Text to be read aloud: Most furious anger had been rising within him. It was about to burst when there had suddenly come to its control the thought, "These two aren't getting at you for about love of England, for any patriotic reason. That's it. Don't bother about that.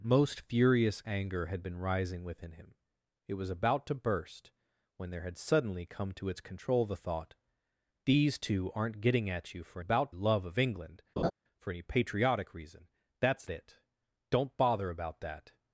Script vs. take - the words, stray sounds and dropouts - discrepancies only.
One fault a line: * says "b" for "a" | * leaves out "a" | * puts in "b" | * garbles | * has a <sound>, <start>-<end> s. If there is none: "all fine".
* has a laugh, 11.2-11.3 s